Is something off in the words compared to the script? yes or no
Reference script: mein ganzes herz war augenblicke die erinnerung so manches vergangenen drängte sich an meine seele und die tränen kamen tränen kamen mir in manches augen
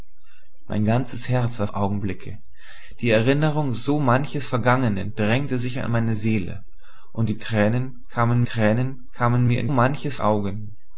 no